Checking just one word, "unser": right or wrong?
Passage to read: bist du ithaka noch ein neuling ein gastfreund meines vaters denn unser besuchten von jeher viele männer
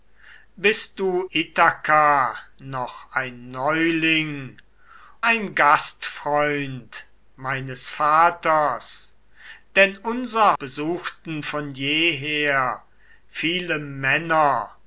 right